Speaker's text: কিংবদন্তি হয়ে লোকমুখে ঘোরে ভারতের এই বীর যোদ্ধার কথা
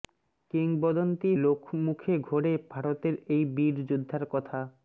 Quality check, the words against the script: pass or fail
fail